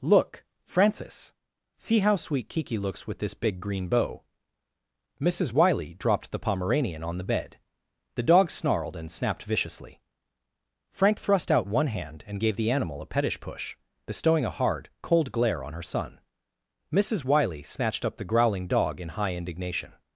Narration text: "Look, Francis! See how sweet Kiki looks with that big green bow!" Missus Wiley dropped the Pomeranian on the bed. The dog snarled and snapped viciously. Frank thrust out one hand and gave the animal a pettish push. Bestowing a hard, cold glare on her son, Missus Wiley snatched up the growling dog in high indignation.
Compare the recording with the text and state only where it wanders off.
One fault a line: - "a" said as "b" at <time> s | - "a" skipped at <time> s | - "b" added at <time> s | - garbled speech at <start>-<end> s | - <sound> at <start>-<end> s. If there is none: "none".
- "that" said as "this" at 3.2 s